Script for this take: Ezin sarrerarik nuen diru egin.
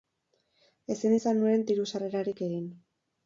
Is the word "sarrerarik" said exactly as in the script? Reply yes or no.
no